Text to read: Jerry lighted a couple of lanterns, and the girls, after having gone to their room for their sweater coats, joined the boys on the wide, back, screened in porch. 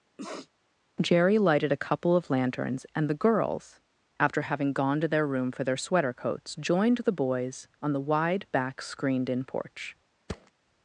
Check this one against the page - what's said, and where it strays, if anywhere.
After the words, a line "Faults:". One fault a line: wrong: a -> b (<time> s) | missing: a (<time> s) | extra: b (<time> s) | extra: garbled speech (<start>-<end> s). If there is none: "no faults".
Jerry lighted a couple of lanterns, and the girls, after having gone to their room for their sweater coats, joined the boys on the wide, back, screened in porch.
Faults:
no faults